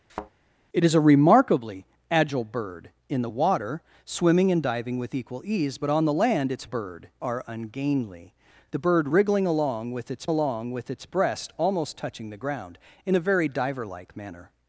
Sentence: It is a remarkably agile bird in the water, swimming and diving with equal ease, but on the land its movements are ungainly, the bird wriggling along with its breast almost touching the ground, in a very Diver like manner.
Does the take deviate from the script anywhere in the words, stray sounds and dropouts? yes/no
yes